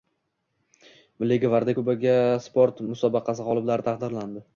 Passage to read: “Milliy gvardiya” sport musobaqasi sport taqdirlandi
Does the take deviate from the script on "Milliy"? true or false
false